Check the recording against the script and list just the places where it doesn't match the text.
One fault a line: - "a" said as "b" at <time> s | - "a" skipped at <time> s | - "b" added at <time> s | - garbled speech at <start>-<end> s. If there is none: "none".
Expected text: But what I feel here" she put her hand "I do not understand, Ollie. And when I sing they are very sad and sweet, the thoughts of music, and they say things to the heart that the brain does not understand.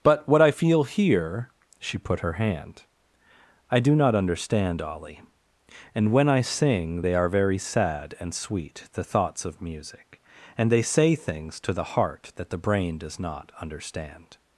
none